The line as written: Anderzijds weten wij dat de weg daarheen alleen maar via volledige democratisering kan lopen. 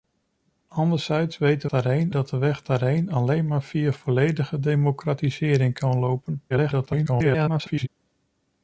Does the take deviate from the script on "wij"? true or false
true